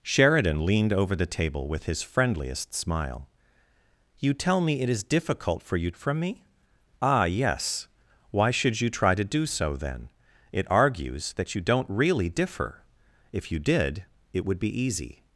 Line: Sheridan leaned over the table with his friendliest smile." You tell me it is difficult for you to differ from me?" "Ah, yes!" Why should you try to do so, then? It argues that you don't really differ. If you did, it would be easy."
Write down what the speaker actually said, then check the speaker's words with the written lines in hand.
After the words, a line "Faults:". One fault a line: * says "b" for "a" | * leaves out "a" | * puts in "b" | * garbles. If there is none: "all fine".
Sheridan leaned over the table with his friendliest smile." You tell me it is difficult for you from me?" "Ah, yes!" Why should you try to do so, then? It argues that you don't really differ. If you did, it would be easy."
Faults:
* leaves out "to differ"